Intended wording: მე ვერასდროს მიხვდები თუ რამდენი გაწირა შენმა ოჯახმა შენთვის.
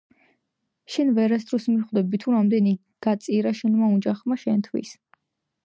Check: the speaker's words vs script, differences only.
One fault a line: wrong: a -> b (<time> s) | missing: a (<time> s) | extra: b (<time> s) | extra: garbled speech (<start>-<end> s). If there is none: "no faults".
wrong: მე -> შენ (0.9 s)